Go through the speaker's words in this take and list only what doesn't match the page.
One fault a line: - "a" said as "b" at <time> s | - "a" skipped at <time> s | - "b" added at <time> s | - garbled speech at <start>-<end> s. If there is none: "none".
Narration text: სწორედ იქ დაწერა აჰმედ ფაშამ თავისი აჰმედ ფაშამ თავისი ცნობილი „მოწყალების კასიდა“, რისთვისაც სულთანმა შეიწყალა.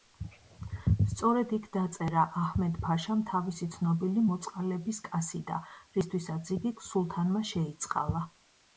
- "აჰმედ ფაშამ თავისი" skipped at 3.7 s
- "იგი" added at 6.6 s